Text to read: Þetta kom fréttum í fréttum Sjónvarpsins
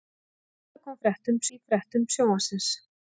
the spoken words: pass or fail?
pass